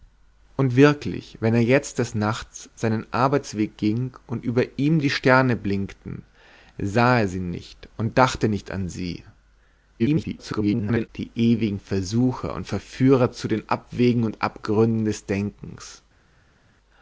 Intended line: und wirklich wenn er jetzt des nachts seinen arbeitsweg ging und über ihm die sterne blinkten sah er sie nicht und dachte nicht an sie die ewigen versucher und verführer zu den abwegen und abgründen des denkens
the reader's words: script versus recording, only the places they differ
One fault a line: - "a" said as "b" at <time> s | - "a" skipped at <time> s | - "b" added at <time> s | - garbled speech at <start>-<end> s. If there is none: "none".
- garbled speech at 10.0-11.1 s